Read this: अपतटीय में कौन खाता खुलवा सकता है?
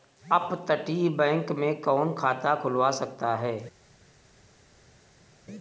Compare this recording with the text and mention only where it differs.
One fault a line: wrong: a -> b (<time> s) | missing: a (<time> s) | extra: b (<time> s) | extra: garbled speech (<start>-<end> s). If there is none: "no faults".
extra: बैंक (1.1 s)